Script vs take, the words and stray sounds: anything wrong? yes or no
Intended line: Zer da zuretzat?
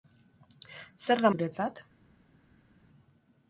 no